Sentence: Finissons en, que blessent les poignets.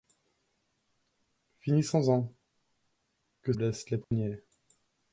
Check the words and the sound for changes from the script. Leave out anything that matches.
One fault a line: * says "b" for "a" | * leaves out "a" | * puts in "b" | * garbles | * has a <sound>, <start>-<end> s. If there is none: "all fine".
* has a dropout, 4.0-4.1 s